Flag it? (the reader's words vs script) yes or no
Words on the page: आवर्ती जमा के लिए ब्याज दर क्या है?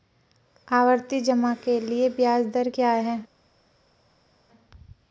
no